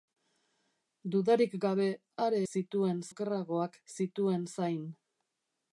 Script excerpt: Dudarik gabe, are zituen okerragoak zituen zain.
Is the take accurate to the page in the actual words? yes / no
yes